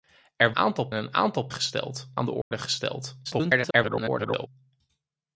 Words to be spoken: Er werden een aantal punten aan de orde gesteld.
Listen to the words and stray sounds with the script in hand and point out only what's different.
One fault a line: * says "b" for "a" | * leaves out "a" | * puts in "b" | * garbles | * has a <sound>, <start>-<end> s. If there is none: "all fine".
* says "aantal" for "werden"
* says "gesteld" for "punten"
* has a dropout, 2.4-2.5 s
* garbles